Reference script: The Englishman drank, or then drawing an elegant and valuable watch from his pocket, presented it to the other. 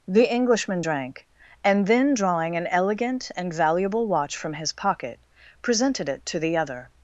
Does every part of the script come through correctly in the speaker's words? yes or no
no